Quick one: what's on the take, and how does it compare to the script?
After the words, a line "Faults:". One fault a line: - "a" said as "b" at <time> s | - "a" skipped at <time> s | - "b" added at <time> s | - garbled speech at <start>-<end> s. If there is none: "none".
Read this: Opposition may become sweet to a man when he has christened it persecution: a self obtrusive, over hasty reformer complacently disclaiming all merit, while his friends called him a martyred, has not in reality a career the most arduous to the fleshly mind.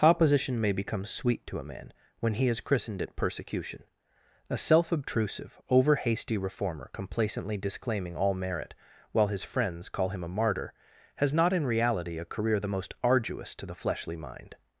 Opposition may become sweet to a man when he has christened it persecution: a self obtrusive, over hasty reformer complacently disclaiming all merit, while his friends call him a martyr, has not in reality a career the most arduous to the fleshly mind.
Faults:
- "called" said as "call" at 9.9 s
- "martyred" said as "martyr" at 10.3 s